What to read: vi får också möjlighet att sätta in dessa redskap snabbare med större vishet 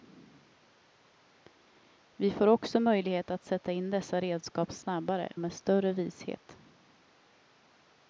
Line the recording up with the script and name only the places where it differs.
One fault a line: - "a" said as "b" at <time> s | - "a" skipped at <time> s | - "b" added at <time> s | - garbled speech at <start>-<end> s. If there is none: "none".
none